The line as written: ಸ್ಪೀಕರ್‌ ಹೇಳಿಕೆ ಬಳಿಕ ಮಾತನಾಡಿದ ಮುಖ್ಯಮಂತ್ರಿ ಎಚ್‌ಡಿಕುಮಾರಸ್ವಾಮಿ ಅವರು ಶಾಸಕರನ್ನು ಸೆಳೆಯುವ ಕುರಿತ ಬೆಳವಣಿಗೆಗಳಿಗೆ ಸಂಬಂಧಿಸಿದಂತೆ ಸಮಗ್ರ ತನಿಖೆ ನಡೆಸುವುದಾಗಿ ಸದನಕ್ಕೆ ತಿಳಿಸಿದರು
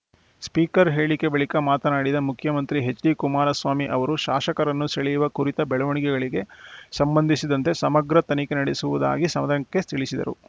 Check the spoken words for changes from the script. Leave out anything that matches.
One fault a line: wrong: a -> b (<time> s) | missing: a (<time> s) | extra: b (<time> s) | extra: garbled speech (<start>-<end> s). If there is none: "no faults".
no faults